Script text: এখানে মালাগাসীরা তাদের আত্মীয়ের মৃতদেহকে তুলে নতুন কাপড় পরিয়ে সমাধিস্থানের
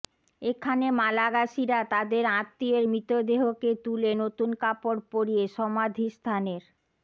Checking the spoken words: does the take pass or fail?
pass